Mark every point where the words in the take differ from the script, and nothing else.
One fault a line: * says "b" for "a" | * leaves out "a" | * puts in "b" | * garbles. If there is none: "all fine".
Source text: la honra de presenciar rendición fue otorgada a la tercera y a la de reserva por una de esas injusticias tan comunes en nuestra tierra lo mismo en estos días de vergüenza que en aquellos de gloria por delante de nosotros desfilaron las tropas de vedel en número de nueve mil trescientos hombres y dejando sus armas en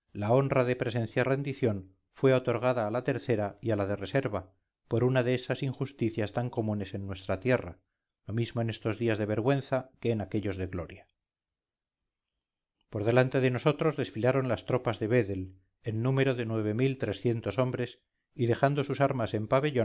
all fine